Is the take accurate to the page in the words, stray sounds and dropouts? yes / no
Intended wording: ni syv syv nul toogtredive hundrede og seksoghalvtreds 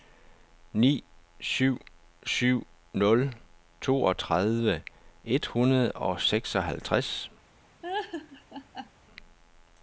no